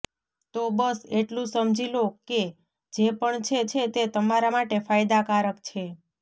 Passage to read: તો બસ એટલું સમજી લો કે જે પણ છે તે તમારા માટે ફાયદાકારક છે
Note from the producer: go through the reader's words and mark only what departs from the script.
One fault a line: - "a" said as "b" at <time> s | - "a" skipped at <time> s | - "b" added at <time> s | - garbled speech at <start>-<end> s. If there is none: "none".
- "છે" added at 3.7 s